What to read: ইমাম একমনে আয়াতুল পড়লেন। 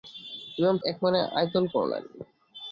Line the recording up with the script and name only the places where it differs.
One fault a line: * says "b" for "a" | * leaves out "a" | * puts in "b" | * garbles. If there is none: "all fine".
all fine